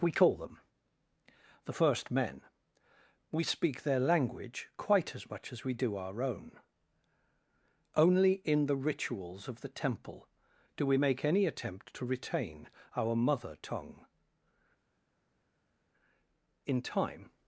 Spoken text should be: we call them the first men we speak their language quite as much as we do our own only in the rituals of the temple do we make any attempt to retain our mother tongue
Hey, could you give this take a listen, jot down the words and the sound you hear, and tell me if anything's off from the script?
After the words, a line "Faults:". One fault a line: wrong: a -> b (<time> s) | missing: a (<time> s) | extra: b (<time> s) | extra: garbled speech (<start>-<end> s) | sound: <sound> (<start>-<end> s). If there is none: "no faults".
we call them the first men we speak their language quite as much as we do our own only in the rituals of the temple do we make any attempt to retain our mother tongue in time
Faults:
extra: in time (16.6 s)